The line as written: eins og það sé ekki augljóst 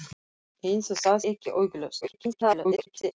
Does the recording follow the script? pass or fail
fail